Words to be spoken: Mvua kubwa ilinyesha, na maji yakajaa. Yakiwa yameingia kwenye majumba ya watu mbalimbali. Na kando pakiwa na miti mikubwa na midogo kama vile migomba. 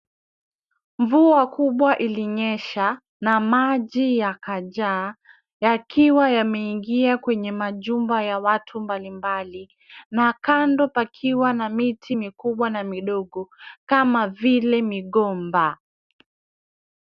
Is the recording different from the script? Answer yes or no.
no